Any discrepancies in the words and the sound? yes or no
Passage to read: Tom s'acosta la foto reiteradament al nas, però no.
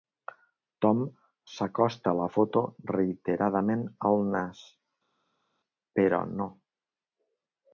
no